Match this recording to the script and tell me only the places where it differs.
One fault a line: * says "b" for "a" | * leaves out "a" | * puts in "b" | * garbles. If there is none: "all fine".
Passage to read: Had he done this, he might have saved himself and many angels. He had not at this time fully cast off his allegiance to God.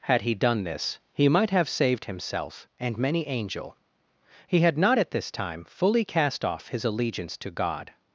* says "angel" for "angels"